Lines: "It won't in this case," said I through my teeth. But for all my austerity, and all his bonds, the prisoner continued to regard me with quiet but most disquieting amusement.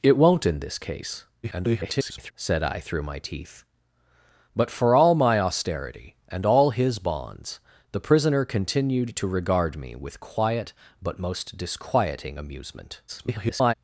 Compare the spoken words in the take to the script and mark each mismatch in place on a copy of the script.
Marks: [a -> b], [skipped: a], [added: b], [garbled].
"It won't in this case," [garbled] said I through my teeth. But for all my austerity, and all his bonds, the prisoner continued to regard me with quiet but most disquieting amusement. [garbled]